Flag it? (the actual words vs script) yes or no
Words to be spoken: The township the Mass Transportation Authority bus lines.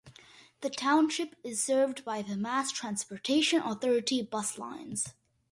yes